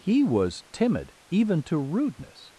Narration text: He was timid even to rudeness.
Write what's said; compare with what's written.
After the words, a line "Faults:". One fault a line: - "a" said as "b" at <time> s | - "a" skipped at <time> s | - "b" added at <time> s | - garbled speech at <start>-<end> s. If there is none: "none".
He was timid even to rudeness.
Faults:
none